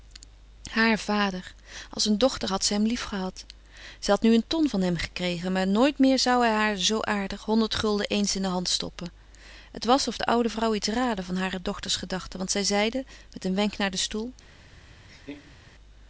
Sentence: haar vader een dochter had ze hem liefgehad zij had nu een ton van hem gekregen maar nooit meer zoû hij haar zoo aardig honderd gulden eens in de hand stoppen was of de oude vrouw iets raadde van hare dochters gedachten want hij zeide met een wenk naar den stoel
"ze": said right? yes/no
yes